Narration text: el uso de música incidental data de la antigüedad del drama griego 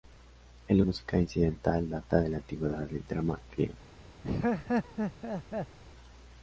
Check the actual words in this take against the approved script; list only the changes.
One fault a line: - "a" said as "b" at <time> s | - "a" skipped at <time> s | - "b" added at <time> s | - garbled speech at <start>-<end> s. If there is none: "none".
- "uso de" skipped at 0.8 s